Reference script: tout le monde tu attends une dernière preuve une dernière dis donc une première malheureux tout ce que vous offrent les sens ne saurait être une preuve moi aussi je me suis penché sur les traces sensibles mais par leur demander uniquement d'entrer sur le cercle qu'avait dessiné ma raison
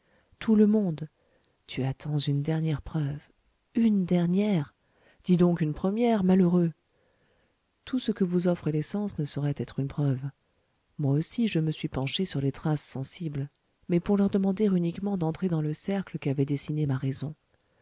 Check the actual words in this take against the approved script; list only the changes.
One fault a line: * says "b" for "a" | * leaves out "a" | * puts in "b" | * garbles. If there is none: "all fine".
* says "pour" for "par"
* says "dans" for "sur"